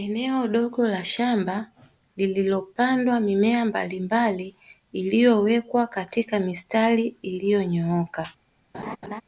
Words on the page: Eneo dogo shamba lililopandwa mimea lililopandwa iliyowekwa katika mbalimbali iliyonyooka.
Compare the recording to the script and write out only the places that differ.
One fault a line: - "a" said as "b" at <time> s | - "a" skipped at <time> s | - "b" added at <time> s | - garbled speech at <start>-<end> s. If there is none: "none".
- "la" added at 0.9 s
- "lililopandwa" said as "mbalimbali" at 3.6 s
- "mbalimbali" said as "mistari" at 6.4 s